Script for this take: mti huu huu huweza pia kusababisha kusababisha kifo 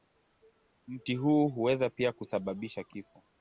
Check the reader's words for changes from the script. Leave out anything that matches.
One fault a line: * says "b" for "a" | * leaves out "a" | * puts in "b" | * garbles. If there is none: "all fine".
* leaves out "huu"
* leaves out "kusababisha"